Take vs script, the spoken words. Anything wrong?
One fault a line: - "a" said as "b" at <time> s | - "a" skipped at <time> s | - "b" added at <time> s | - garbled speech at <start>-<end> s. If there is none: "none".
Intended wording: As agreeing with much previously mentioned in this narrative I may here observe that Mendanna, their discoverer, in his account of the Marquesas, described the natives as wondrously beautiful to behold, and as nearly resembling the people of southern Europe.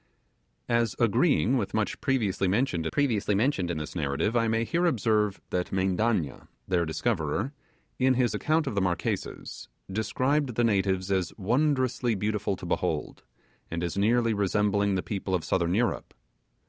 - "previously mentioned" added at 2.9 s